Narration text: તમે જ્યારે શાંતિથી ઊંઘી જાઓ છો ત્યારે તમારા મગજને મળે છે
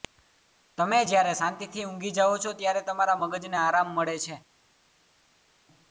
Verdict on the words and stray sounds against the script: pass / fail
fail